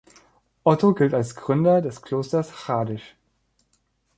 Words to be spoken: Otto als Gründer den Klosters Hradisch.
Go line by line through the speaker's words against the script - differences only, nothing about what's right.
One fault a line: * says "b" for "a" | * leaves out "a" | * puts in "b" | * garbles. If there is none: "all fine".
* puts in "gilt"
* says "des" for "den"